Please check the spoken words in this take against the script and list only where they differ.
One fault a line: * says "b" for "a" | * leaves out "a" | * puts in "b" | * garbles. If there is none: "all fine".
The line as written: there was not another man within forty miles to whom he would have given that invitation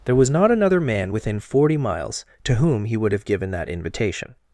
all fine